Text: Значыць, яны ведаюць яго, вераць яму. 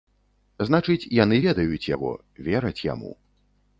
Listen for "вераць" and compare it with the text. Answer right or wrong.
right